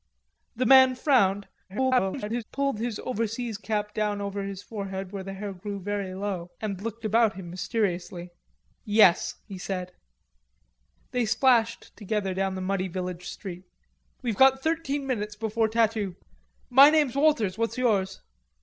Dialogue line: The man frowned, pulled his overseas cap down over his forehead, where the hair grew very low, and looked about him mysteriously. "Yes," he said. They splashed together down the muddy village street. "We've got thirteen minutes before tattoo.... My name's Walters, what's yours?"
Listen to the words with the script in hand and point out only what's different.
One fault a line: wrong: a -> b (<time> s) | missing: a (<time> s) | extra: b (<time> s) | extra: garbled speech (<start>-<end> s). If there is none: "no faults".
extra: garbled speech (1.7-2.4 s)